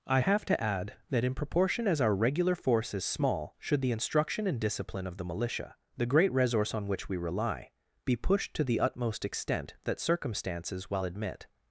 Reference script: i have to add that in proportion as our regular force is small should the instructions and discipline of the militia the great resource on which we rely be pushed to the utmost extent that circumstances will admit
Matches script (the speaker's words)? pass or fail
fail